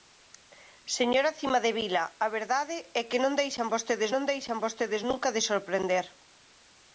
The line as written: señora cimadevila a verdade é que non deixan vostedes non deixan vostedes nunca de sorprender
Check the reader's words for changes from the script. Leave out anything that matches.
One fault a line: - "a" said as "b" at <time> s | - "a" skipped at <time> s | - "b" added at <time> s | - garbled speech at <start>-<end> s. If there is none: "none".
none